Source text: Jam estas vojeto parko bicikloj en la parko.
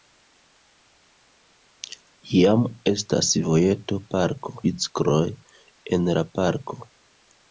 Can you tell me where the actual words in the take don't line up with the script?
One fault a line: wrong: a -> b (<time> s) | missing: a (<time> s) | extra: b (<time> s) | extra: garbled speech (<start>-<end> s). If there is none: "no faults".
no faults